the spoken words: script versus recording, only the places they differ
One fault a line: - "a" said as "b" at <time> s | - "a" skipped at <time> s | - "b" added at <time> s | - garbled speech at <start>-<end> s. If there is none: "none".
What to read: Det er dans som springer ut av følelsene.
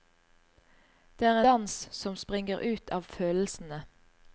none